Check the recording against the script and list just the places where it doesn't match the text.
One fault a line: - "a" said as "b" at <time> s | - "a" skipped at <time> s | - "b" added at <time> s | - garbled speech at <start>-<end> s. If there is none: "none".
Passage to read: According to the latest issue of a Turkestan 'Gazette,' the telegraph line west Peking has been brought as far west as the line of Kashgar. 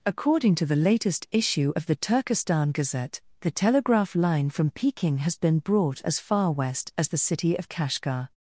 - "a" said as "the" at 1.9 s
- "west" said as "from" at 4.5 s
- "line" said as "city" at 7.2 s